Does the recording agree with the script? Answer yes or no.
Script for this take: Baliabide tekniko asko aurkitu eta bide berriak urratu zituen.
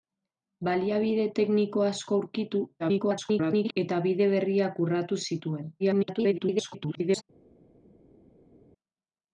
no